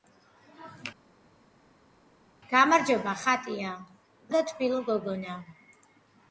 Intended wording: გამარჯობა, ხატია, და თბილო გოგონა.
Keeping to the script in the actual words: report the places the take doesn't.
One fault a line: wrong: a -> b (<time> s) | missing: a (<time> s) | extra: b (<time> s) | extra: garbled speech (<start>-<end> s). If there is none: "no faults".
no faults